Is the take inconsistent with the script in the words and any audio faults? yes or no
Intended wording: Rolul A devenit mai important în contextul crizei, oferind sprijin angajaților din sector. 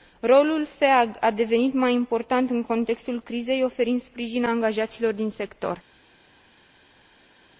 yes